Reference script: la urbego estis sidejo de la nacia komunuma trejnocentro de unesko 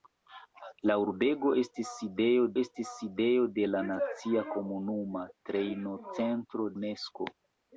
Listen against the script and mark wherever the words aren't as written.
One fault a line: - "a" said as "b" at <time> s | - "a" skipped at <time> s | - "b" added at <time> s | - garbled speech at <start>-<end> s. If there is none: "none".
- "estis sidejo" added at 2.6 s
- "de" skipped at 6.7 s